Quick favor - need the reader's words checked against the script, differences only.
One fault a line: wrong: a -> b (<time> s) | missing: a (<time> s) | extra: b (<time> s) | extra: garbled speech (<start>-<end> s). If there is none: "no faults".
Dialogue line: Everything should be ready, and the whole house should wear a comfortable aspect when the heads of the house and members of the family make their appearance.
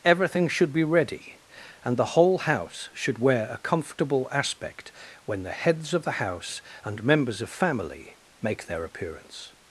missing: the (7.5 s)